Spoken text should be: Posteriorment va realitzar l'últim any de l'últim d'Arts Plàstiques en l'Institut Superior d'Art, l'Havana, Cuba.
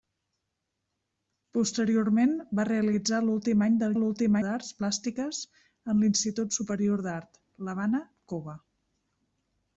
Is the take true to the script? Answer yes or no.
yes